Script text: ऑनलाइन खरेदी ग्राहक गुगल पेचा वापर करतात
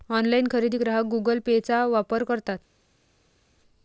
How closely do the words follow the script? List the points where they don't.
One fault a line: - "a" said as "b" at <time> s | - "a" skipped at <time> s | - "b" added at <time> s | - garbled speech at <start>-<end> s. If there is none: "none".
none